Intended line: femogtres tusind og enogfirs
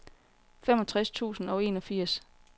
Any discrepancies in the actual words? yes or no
no